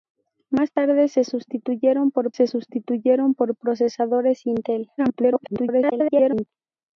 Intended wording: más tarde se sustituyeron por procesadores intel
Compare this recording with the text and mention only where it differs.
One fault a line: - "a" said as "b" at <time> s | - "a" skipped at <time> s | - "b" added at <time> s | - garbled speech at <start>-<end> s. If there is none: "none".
- "se sustituyeron por" added at 2.3 s
- garbled speech at 5.0-6.5 s